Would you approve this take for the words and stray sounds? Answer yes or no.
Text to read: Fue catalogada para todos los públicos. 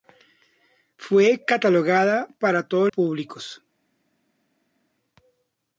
no